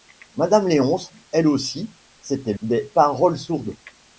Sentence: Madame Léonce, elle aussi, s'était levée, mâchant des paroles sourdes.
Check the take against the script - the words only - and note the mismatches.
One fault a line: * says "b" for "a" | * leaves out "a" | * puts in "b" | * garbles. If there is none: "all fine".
* leaves out "levée mâchant"